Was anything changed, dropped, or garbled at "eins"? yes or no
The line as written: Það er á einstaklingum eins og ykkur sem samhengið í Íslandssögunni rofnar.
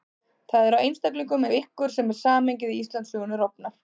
yes